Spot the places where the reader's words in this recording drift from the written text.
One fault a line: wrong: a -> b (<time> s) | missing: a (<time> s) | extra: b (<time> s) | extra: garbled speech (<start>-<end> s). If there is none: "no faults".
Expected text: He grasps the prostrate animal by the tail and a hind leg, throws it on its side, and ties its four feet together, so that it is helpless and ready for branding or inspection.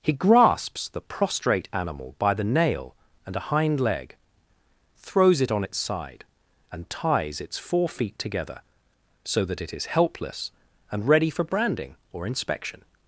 wrong: tail -> nail (2.4 s)